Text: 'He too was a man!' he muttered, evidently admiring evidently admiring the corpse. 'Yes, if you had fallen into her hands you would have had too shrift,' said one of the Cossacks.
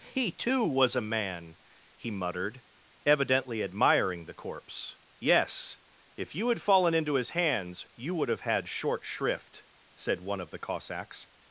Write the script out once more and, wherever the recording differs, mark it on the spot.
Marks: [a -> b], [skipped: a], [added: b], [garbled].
'He too was a man!' he muttered, evidently admiring [skipped: evidently admiring] the corpse. 'Yes, if you had fallen into [her -> his] hands you would have had [too -> short] shrift,' said one of the Cossacks.